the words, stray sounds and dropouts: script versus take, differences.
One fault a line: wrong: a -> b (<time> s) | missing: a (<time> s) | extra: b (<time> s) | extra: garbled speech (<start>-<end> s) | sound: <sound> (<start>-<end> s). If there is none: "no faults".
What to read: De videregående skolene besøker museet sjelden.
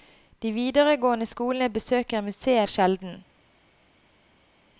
no faults